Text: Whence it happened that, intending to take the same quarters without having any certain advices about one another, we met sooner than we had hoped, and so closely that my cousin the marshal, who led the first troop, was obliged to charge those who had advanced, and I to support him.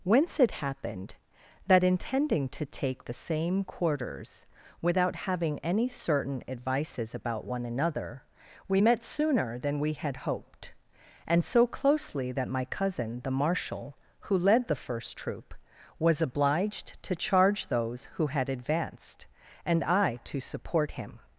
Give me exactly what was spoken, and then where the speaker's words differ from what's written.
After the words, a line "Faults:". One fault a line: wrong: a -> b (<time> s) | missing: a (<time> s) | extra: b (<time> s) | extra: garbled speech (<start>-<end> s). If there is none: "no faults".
Whence it happened that, intending to take the same quarters without having any certain advices about one another, we met sooner than we had hoped, and so closely that my cousin the marshal, who led the first troop, was obliged to charge those who had advanced, and I to support him.
Faults:
no faults